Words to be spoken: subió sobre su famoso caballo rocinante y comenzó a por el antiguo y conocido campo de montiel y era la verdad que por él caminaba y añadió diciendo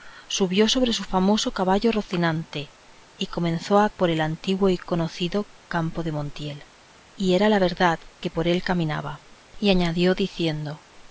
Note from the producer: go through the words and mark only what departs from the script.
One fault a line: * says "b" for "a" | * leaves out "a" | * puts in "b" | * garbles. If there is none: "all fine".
all fine